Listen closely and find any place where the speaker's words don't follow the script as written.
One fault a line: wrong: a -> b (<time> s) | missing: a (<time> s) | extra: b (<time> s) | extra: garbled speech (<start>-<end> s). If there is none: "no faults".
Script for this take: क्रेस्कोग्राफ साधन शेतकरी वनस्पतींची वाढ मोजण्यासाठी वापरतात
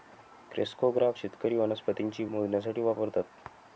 missing: साधन (1.2 s)
missing: वाढ (2.2 s)